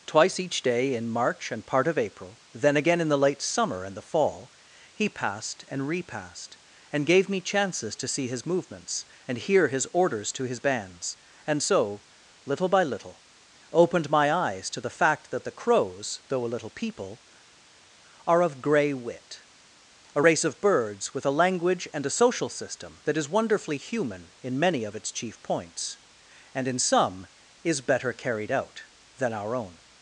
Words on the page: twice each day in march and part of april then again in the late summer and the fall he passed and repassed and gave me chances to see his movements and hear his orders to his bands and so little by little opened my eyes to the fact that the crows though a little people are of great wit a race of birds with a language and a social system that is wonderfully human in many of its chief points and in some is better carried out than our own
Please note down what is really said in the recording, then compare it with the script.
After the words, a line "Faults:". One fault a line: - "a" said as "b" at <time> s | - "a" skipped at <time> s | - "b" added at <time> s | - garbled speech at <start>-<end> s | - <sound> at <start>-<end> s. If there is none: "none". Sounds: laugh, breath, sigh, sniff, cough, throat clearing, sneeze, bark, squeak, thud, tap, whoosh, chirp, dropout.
twice each day in march and part of april then again in the late summer and the fall he passed and repassed and gave me chances to see his movements and hear his orders to his bands and so little by little opened my eyes to the fact that the crows though a little people are of grey wit a race of birds with a language and a social system that is wonderfully human in many of its chief points and in some is better carried out than our own
Faults:
- "great" said as "grey" at 18.6 s